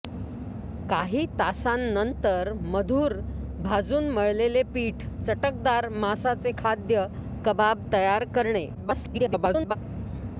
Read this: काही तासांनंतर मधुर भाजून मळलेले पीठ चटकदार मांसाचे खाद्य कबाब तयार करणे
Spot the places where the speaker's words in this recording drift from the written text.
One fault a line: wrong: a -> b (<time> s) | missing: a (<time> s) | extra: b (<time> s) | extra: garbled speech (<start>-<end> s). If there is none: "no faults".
extra: garbled speech (8.7-9.8 s)